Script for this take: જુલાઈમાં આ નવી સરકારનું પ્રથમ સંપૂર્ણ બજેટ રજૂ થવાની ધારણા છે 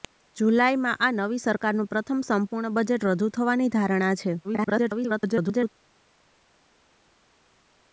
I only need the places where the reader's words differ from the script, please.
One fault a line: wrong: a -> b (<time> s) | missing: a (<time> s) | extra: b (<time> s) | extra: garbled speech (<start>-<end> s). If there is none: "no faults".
extra: garbled speech (4.4-5.7 s)